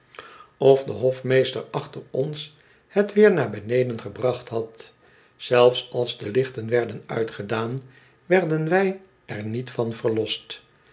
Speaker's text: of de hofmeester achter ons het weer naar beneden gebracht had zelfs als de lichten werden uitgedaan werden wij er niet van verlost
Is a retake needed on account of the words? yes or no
no